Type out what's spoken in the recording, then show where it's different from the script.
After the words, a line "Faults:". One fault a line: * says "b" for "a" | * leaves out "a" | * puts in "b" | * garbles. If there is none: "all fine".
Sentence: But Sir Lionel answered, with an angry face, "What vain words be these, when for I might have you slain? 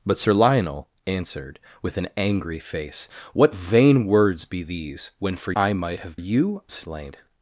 But Sir Lionel answered, with an angry face, "What vain words be these, when for I might have you slain?
Faults:
all fine